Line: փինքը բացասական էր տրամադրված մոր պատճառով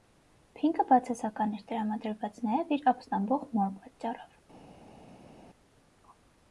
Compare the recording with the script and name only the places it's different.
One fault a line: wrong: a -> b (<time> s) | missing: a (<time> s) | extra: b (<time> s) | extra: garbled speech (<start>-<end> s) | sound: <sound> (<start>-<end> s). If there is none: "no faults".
extra: նաև իր ապստամբող (2.5 s)